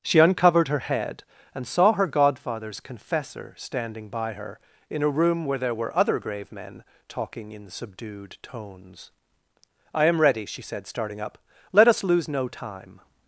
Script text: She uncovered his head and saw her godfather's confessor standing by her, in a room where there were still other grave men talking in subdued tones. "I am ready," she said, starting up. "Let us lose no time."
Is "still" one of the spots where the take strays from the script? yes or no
yes